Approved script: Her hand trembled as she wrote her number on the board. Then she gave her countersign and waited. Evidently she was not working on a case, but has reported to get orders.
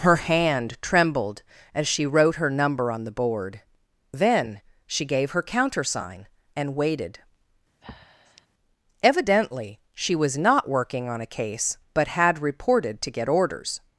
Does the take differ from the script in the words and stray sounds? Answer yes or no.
yes